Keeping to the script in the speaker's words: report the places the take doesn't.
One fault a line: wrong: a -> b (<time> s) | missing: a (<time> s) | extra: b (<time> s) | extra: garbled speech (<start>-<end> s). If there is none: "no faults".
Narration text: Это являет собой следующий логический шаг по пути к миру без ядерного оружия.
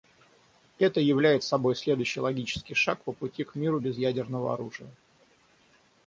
no faults